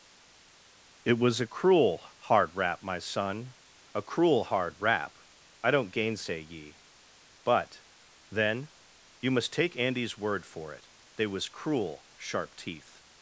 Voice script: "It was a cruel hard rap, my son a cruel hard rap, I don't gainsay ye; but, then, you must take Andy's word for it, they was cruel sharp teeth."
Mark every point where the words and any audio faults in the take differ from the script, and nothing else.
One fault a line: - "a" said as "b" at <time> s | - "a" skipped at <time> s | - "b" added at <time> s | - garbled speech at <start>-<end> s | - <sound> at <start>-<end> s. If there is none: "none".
none